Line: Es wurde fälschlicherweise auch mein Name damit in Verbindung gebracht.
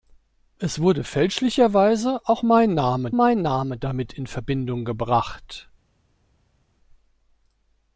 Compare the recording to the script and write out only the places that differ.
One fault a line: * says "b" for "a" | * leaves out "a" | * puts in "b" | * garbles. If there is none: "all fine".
* puts in "mein Name"